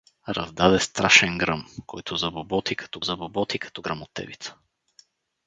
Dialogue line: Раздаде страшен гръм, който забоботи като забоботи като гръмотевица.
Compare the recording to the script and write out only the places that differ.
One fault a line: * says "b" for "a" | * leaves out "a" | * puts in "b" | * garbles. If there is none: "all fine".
all fine